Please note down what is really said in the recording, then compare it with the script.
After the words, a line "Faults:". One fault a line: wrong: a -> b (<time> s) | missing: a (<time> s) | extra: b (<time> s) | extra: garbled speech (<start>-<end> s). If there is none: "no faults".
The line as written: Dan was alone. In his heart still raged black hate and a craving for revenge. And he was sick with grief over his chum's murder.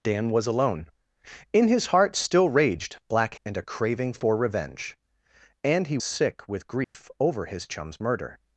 Dan was alone. In his heart still raged black and a craving for revenge. And he sick with grief over his chum's murder.
Faults:
missing: hate (3.4 s)
missing: was (6.0 s)